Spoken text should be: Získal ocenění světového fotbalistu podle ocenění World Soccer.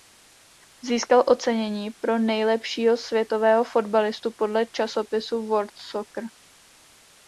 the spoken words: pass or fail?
fail